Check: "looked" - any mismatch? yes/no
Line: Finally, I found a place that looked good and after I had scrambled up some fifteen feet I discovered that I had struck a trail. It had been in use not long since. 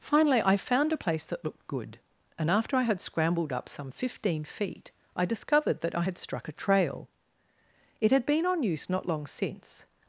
no